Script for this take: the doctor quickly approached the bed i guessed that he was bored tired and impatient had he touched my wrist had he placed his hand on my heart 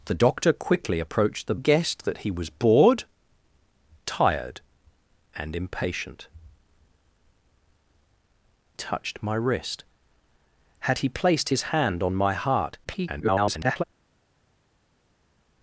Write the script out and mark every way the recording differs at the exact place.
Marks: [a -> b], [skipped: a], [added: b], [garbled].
the doctor quickly approached the [skipped: bed i] guessed that he was bored tired and impatient [skipped: had he] touched my wrist had he placed his hand on my heart [garbled]